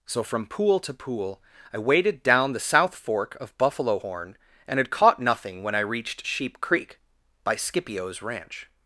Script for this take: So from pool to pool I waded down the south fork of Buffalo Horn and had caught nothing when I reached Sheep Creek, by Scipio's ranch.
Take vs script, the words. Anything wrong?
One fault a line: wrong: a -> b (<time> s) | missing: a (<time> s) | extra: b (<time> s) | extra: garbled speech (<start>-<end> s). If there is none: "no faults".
no faults